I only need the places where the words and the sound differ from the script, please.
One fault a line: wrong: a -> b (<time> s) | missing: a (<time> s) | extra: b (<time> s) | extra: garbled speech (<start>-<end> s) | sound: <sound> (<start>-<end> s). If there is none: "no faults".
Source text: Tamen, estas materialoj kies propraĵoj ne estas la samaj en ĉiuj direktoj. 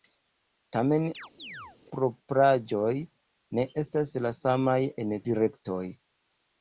missing: estas materialoj kies (1.0 s)
sound: chirp (1.1-1.8 s)
missing: ĉiuj (5.2 s)